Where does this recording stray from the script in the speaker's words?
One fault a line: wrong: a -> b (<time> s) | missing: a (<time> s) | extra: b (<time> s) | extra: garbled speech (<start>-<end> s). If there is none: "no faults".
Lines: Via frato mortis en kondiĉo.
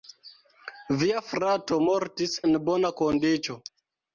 extra: bona (2.7 s)